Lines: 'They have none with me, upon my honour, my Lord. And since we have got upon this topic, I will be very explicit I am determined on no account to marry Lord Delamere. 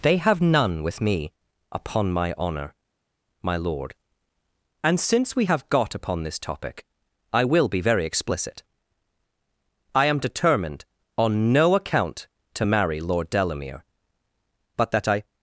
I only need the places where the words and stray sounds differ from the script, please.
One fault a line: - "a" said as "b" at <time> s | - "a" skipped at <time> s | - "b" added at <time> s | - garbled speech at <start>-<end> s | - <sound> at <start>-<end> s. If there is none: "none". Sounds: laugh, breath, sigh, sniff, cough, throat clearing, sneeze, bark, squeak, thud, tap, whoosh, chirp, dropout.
- "But that I" added at 14.8 s